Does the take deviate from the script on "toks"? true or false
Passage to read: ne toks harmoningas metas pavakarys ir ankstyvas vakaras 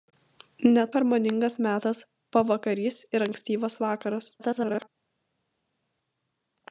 true